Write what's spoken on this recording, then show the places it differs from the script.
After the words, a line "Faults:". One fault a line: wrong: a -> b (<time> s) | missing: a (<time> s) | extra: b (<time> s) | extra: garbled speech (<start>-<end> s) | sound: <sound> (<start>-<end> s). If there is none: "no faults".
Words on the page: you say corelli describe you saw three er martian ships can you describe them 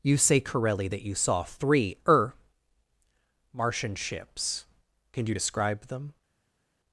you say corelli that you saw three er martian ships can you describe them
Faults:
wrong: describe -> that (0.9 s)